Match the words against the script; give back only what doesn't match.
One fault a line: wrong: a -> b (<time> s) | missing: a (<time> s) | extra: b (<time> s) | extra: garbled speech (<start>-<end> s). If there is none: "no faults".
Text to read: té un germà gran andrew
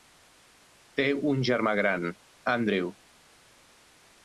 no faults